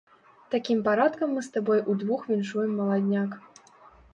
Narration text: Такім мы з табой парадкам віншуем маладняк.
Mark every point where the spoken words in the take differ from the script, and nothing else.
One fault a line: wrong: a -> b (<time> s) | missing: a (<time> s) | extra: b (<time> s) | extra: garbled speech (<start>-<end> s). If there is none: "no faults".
extra: парадкам (0.9 s)
wrong: парадкам -> удвух (1.9 s)